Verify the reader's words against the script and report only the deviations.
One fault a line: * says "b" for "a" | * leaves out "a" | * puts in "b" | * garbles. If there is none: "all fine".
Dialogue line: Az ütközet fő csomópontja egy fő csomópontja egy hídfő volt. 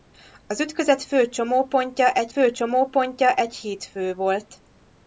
all fine